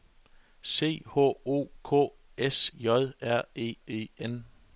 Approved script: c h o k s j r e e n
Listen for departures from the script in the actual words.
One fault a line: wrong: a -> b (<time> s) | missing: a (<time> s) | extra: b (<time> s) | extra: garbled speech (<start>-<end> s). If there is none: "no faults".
no faults